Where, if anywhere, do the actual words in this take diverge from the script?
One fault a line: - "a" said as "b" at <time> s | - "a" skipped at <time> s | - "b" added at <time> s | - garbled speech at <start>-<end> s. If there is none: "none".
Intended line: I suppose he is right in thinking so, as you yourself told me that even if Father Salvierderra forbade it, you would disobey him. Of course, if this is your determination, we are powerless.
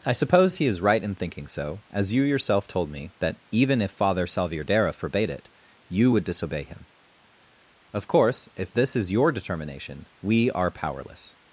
none